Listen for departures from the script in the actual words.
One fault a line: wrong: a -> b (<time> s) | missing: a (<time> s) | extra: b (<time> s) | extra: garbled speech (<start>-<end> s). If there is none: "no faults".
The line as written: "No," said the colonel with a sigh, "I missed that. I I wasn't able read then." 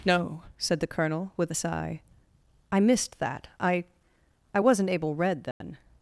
no faults